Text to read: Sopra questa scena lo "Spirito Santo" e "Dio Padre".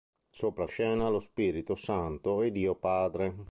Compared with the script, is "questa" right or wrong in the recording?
wrong